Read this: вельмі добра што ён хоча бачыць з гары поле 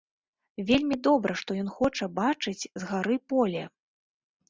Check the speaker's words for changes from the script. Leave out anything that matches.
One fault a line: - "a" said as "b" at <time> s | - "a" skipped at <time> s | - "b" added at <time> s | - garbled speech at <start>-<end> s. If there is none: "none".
none